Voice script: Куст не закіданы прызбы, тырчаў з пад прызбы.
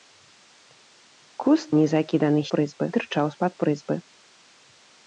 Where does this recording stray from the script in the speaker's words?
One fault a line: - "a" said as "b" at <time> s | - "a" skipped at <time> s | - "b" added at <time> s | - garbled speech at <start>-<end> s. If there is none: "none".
none